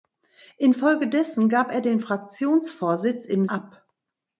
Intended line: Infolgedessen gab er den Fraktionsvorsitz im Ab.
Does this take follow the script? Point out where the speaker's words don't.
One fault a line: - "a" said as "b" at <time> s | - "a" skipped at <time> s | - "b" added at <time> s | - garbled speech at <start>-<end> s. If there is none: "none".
none